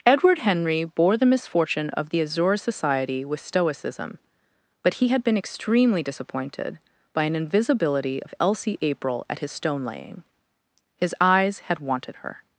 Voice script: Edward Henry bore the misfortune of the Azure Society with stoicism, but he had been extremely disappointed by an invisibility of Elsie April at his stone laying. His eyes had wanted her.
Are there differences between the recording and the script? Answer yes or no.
no